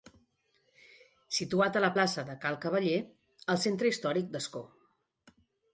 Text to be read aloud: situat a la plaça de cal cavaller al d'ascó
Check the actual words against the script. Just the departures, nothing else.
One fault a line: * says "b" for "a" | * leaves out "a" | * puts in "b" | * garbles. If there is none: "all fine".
* puts in "centre històric"